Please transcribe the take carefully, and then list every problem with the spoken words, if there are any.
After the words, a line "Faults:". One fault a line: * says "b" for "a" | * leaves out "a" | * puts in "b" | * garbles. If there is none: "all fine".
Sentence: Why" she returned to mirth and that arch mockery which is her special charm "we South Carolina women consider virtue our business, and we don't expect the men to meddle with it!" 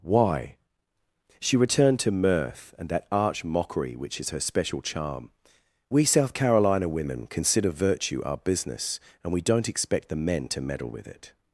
Why" she returned to mirth and that arch mockery which is her special charm "we South Carolina women consider virtue our business, and we don't expect the men to meddle with it!"
Faults:
all fine